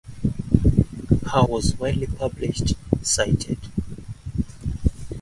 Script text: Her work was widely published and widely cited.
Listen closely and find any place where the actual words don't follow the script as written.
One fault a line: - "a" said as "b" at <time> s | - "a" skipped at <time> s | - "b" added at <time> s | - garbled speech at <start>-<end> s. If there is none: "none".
- "work" skipped at 1.4 s
- "and widely" skipped at 2.7 s